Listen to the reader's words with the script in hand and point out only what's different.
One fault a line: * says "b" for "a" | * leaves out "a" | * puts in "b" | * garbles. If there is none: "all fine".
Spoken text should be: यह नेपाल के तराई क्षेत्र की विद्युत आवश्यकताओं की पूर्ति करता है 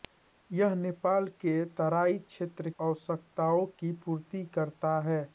* leaves out "की विद्युत"